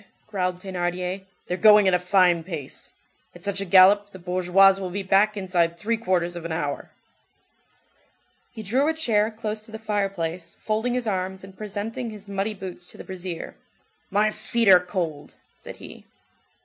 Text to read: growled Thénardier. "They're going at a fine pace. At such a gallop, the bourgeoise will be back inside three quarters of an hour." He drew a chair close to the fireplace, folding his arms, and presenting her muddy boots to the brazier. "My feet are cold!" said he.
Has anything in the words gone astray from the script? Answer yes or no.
yes